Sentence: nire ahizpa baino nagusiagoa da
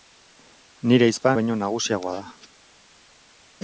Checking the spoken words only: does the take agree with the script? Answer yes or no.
yes